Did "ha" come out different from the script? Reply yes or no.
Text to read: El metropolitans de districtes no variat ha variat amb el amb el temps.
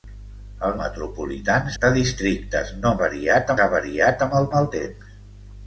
no